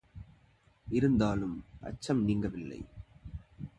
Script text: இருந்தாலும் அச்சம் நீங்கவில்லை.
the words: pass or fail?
pass